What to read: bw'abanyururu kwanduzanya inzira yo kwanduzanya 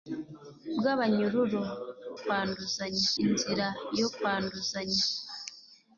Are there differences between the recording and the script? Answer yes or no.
no